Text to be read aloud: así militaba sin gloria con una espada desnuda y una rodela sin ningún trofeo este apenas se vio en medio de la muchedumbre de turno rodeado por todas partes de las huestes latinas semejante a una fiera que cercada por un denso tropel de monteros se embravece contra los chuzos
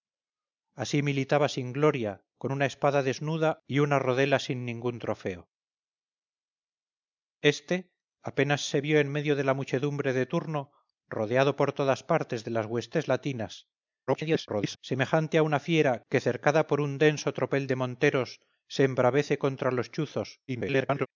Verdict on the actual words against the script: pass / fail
fail